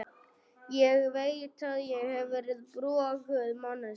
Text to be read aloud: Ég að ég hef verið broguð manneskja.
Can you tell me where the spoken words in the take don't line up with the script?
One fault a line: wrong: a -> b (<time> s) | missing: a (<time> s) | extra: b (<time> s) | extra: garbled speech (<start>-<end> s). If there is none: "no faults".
extra: veit (1.1 s)